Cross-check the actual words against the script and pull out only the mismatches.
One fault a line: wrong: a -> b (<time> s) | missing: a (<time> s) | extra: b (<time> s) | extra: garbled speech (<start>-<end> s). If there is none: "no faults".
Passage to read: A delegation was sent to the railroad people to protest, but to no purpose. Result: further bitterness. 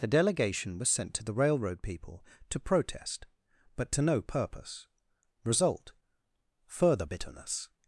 wrong: A -> The (0.0 s)